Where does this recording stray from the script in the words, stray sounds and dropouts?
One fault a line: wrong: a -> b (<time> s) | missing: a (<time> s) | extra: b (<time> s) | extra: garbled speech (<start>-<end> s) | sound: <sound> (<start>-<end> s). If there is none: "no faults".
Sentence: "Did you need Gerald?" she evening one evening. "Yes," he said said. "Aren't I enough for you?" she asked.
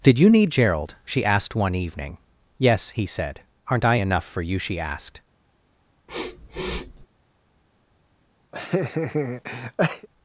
wrong: evening -> asked (1.2 s)
missing: said (3.4 s)
sound: sniff (6.1-7.1 s)
sound: laugh (8.5-10.1 s)